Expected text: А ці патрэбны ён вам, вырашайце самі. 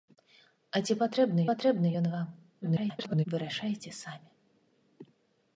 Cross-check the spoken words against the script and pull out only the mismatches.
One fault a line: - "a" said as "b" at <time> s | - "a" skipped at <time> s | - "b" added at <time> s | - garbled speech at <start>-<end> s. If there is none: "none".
- "патрэбны" added at 1.5 s
- garbled speech at 2.6-3.3 s